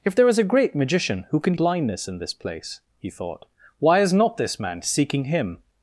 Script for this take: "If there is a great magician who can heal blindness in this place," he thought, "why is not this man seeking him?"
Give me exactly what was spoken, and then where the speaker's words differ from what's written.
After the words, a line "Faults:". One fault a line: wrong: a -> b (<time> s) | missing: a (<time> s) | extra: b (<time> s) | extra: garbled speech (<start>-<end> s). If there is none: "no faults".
"If there is a great magician who can blindness in this place," he thought, "why is not this man seeking him?"
Faults:
missing: heal (1.6 s)